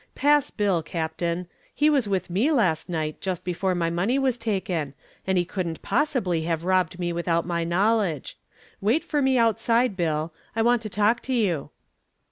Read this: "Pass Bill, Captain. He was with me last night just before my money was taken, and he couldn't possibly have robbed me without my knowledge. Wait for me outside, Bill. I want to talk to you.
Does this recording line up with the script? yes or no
yes